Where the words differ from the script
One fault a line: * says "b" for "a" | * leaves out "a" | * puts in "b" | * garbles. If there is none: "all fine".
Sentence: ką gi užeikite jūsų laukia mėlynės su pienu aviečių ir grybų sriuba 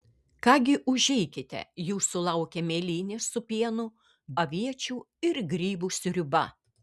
all fine